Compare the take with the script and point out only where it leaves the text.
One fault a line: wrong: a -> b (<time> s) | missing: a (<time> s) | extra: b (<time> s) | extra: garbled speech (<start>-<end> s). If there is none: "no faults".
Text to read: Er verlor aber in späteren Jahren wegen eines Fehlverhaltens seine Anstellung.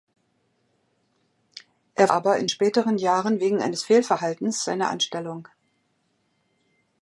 missing: verlor (2.1 s)